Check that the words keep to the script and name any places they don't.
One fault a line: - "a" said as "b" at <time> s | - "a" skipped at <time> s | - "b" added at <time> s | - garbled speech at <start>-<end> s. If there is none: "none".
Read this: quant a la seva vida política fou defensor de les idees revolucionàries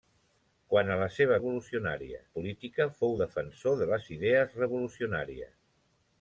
- "vida" said as "revolucionàries" at 1.4 s